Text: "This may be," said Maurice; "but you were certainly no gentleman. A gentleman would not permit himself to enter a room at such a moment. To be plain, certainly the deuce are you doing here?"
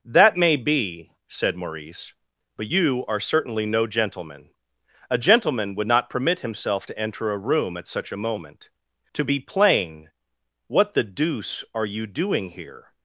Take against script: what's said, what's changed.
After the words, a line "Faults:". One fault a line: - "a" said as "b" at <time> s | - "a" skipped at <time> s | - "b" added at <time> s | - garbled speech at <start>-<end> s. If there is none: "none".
"That may be," said Maurice; "but you are certainly no gentleman. A gentleman would not permit himself to enter a room at such a moment. To be plain, what the deuce are you doing here?"
Faults:
- "This" said as "That" at 0.1 s
- "were" said as "are" at 3.1 s
- "certainly" said as "what" at 10.7 s